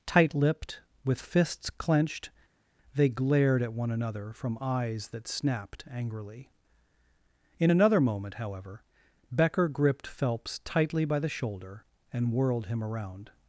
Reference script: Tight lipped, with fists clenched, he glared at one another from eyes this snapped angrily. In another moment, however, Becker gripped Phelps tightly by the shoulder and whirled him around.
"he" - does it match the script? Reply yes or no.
no